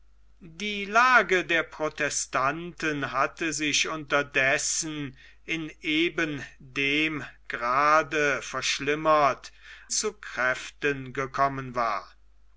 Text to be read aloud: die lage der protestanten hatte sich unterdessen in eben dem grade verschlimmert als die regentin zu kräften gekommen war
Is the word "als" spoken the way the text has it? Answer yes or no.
no